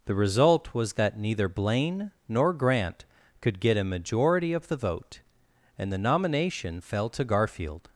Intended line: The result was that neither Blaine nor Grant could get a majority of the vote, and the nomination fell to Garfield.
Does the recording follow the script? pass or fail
pass